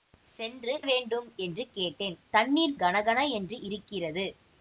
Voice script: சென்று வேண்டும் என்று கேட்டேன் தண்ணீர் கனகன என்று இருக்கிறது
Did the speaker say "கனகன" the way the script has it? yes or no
yes